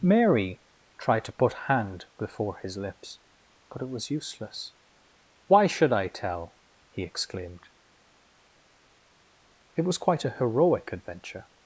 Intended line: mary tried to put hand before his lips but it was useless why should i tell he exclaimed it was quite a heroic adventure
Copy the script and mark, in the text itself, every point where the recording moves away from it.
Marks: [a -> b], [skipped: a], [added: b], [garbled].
mary tried to put hand before his lips but it was useless why should i tell he exclaimed it was quite a heroic adventure